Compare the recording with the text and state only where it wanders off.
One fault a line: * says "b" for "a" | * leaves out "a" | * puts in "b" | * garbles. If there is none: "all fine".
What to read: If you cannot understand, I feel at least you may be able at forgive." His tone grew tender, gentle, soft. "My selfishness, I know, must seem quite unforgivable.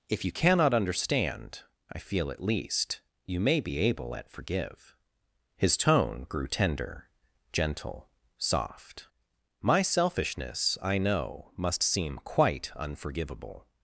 all fine